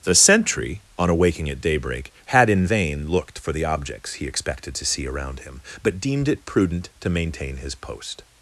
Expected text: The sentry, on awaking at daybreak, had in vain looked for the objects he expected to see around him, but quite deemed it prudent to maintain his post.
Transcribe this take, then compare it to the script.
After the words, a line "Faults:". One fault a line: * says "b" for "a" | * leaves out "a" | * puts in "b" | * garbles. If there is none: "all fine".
The sentry, on awaking at daybreak, had in vain looked for the objects he expected to see around him, but deemed it prudent to maintain his post.
Faults:
* leaves out "quite"